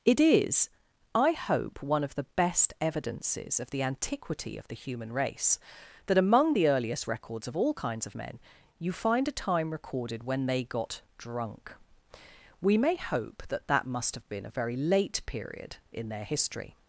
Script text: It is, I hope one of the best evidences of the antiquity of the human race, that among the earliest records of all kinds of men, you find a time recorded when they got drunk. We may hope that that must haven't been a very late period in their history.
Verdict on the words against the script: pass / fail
fail